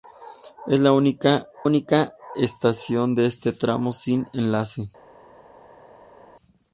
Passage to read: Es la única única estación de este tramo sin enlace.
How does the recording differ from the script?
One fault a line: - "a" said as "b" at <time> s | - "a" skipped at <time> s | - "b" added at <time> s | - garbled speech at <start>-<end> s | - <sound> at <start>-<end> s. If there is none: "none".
none